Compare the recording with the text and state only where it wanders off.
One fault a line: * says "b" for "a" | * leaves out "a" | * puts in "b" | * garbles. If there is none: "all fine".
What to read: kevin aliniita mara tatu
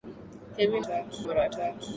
* says "tatu" for "aliniita"